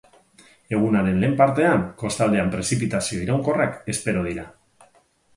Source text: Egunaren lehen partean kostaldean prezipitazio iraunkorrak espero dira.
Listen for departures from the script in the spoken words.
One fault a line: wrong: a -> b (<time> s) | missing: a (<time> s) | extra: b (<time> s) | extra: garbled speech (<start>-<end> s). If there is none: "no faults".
no faults